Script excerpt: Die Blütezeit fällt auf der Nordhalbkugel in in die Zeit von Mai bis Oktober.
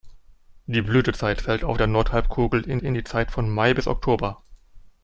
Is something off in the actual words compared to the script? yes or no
no